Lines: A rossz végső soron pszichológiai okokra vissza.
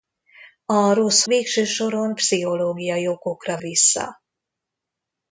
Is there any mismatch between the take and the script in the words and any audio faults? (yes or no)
no